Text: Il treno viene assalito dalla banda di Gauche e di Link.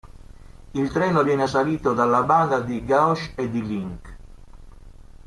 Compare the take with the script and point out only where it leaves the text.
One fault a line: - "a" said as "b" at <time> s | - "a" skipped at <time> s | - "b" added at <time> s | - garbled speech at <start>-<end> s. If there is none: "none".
none